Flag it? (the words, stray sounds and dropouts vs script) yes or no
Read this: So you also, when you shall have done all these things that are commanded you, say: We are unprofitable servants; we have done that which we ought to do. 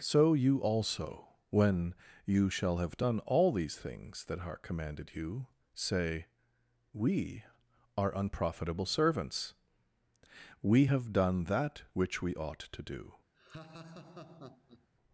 yes